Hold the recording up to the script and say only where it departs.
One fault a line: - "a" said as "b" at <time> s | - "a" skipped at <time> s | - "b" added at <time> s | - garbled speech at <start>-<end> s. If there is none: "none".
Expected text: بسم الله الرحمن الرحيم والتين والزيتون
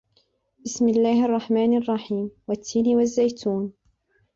none